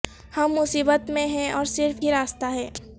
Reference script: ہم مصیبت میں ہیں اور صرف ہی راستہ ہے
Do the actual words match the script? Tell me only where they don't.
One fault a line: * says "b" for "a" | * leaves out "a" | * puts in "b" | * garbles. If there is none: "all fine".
all fine